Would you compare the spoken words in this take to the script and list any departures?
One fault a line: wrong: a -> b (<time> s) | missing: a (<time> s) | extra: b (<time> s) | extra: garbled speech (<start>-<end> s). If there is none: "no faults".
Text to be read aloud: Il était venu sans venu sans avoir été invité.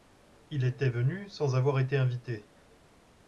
missing: venu sans (1.6 s)